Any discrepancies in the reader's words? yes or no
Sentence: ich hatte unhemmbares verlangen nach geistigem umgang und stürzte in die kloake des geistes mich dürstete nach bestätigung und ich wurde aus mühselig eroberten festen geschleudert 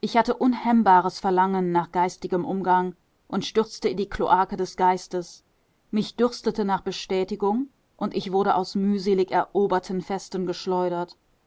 no